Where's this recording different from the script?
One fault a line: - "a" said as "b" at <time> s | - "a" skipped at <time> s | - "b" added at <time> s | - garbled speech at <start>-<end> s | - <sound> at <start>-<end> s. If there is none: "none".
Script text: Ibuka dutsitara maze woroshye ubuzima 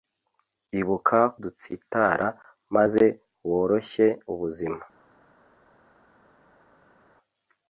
none